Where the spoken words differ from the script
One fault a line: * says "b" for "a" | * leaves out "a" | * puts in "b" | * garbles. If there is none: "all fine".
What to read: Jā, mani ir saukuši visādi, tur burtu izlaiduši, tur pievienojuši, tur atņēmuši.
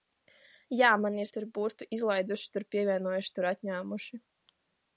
* leaves out "saukuši visādi"